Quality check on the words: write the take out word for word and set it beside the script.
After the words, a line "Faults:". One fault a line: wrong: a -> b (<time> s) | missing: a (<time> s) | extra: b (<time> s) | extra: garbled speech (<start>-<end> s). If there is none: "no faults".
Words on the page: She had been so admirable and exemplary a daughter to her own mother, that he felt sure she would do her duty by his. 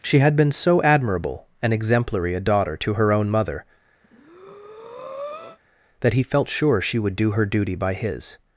She had been so admirable and exemplary a daughter to her own mother, that he felt sure she would do her duty by his.
Faults:
no faults